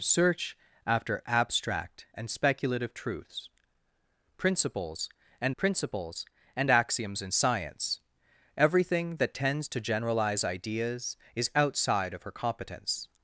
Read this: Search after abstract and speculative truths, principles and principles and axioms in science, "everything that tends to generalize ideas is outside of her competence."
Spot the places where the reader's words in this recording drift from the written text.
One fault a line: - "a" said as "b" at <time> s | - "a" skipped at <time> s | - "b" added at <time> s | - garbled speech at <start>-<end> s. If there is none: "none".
none